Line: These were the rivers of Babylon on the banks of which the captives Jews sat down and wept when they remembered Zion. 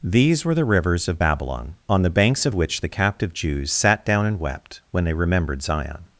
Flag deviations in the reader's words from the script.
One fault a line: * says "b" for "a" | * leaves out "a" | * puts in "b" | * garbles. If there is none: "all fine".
* says "captive" for "captives"